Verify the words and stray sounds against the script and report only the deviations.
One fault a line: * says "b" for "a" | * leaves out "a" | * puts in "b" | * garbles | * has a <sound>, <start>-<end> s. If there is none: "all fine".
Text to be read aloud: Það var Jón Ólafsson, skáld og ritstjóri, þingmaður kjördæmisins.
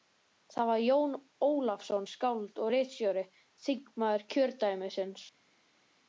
all fine